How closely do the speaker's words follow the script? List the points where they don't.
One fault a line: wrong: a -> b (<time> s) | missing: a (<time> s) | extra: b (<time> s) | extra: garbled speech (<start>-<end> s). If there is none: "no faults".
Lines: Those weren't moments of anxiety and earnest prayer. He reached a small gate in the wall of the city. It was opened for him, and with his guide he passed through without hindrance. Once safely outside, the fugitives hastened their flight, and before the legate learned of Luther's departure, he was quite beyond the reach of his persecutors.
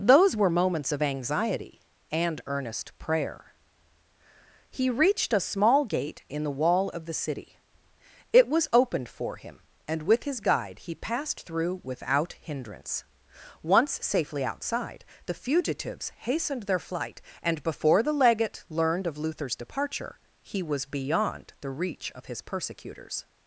wrong: weren't -> were (0.3 s)
missing: quite (20.9 s)